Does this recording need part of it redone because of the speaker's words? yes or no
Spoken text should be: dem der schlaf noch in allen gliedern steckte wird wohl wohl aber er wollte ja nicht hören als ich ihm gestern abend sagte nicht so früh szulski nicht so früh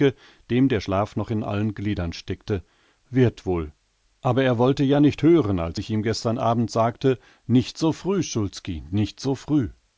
yes